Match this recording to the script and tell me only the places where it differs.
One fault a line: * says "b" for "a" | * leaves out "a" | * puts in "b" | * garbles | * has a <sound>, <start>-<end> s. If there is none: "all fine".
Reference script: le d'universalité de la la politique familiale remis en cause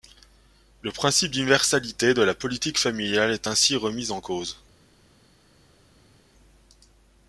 * puts in "principe"
* leaves out "la"
* puts in "est ainsi"